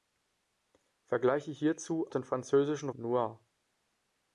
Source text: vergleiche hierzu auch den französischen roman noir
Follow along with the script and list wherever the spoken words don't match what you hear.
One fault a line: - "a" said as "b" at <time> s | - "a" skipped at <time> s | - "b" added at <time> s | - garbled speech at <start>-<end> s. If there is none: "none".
- "auch" skipped at 2.1 s
- "roman" skipped at 2.9 s